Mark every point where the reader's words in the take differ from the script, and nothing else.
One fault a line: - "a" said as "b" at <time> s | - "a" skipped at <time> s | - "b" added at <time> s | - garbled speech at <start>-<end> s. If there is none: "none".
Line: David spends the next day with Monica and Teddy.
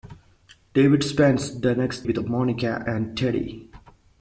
- "day" skipped at 2.1 s